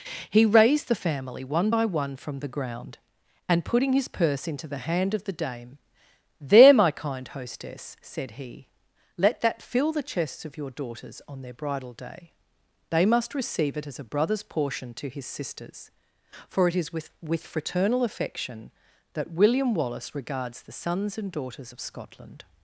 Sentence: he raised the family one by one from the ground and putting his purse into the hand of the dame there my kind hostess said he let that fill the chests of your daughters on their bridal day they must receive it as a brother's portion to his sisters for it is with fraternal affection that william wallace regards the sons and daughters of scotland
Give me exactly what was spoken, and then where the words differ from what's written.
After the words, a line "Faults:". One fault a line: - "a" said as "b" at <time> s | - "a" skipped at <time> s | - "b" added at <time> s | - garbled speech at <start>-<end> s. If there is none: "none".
he raised the family one by one from the ground and putting his purse into the hand of the dame there my kind hostess said he let that fill the chests of your daughters on their bridal day they must receive it as a brother's portion to his sisters for it is with with fraternal affection that william wallace regards the sons and daughters of scotland
Faults:
- "with" added at 17.2 s